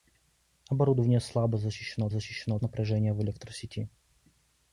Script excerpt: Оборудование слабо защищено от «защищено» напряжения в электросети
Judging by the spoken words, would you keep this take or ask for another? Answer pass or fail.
pass